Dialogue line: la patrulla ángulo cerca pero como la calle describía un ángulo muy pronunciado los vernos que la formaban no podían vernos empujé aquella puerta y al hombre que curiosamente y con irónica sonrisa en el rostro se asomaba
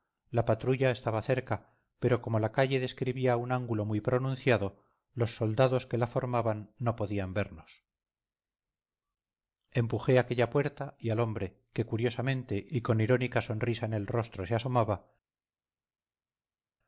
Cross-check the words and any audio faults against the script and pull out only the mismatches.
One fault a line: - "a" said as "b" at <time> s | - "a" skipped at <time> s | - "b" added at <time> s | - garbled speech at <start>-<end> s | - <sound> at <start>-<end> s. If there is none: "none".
- "ángulo" said as "estaba" at 0.9 s
- "vernos" said as "soldados" at 5.3 s